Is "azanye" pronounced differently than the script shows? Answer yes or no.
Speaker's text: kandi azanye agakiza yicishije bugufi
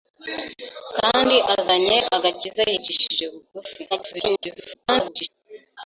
no